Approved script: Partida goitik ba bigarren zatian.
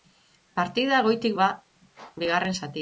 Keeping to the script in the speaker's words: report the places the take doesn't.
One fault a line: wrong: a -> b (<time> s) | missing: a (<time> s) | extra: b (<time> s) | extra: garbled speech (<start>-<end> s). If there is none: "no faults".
no faults